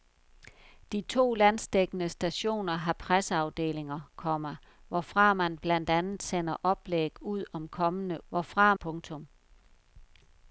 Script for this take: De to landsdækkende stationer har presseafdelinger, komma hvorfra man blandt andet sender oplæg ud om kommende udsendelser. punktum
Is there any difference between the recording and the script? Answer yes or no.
yes